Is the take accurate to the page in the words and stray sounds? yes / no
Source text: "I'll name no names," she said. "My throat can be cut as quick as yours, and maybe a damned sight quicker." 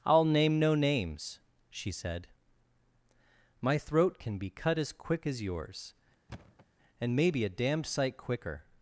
no